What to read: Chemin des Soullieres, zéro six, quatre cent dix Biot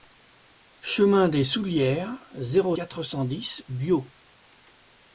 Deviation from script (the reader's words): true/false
true